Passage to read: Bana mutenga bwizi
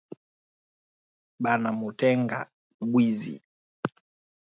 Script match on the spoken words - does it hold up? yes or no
yes